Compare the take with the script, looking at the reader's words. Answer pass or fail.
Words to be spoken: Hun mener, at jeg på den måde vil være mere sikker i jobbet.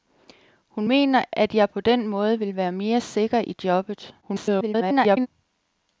fail